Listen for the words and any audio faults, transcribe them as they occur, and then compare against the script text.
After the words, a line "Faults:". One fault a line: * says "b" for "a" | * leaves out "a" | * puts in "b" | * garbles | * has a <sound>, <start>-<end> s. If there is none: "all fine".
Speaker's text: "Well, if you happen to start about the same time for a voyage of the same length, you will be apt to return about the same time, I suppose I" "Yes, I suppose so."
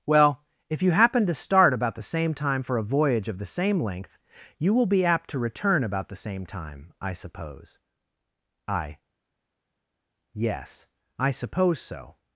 "Well, if you happen to start about the same time for a voyage of the same length, you will be apt to return about the same time, I suppose I" "Yes, I suppose so."
Faults:
all fine